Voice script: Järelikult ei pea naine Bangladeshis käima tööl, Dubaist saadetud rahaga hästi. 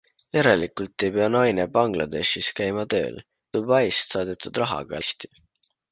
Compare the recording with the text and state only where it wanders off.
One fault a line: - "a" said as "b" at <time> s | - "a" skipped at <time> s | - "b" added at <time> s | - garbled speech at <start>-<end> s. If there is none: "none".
none